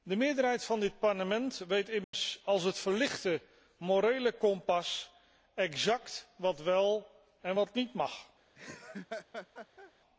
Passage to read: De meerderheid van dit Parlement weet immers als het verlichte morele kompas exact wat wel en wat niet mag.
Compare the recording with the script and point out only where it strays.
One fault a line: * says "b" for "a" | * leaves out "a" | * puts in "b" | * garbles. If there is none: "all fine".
all fine